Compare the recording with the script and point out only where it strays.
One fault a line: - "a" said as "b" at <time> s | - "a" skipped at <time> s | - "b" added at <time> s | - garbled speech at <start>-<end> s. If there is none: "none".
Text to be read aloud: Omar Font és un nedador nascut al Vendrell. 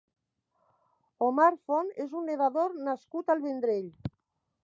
none